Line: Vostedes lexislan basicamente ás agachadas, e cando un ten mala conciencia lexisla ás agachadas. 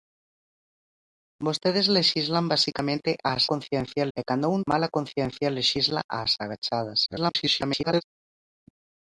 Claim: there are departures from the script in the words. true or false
true